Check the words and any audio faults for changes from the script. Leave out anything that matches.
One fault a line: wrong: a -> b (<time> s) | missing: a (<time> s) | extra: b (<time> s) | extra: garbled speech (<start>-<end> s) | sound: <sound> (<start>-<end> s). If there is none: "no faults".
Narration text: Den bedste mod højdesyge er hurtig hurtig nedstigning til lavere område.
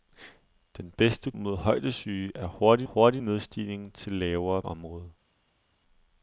no faults